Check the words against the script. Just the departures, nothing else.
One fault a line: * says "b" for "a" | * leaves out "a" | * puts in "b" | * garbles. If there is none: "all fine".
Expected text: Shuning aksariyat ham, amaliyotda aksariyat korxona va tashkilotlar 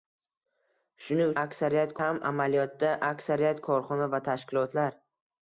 all fine